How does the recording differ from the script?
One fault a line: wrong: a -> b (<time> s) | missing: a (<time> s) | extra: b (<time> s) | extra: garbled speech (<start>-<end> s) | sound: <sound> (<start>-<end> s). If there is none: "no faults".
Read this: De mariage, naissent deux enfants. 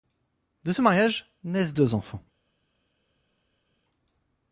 extra: ce (0.7 s)